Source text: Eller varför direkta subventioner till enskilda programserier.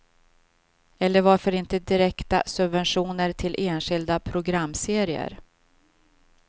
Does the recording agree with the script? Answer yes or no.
no